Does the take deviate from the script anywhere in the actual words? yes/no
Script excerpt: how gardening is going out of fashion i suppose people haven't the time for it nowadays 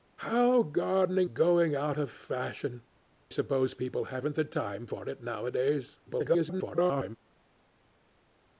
yes